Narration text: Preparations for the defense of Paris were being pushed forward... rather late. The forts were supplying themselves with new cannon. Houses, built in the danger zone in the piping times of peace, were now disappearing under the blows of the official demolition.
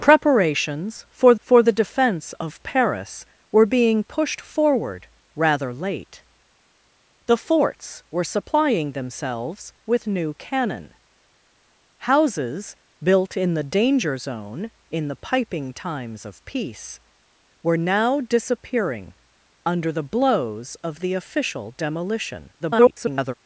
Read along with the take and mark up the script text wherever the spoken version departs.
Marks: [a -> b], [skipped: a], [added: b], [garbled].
Preparations for [added: for] the defense of Paris were being pushed forward... rather late. The forts were supplying themselves with new cannon. Houses, built in the danger zone in the piping times of peace, were now disappearing under the blows of the official demolition. [garbled]